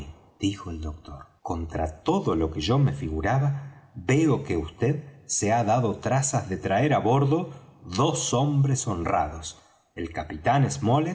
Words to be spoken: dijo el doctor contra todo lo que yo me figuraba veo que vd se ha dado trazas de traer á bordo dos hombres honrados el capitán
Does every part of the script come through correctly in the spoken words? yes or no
yes